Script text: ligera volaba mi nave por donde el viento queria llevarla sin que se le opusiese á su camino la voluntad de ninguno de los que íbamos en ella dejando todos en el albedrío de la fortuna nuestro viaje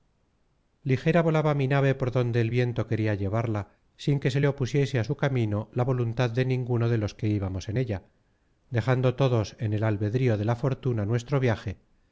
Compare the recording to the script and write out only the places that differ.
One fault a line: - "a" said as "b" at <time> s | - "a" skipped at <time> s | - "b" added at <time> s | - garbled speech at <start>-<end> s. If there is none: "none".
none